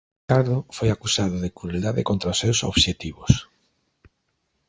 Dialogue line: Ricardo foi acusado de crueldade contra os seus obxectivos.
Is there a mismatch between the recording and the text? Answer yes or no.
no